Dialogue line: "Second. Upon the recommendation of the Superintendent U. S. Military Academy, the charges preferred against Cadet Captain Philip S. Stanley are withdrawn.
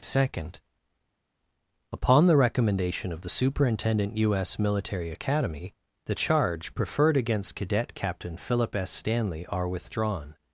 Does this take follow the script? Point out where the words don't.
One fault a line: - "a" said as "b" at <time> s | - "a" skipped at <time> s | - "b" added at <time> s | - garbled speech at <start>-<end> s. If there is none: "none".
- "charges" said as "charge" at 6.1 s